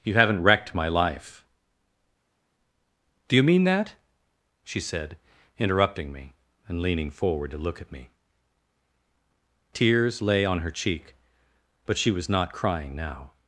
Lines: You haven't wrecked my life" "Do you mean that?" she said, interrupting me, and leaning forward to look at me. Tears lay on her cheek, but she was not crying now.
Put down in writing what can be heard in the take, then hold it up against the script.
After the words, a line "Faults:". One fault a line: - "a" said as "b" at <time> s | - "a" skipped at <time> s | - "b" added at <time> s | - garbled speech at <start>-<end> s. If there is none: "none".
You haven't wrecked my life" "Do you mean that?" she said, interrupting me, and leaning forward to look at me. Tears lay on her cheek, but she was not crying now.
Faults:
none